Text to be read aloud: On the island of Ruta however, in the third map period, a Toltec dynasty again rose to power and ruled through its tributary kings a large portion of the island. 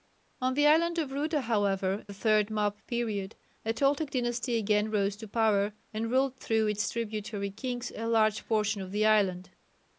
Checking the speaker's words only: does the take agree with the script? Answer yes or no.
no